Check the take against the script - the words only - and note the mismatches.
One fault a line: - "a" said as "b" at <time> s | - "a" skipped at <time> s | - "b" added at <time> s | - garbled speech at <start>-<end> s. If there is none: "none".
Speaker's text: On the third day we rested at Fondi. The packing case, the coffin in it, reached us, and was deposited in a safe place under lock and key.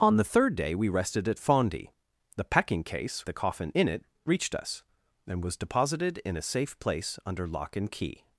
none